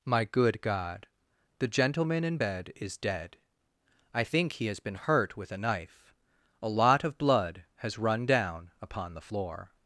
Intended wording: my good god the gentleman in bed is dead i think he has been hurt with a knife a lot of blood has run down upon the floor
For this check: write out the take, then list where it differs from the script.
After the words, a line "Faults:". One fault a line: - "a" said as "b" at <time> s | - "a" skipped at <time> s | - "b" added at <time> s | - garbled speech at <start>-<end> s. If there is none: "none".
my good god the gentleman in bed is dead i think he has been hurt with a knife a lot of blood has run down upon the floor
Faults:
none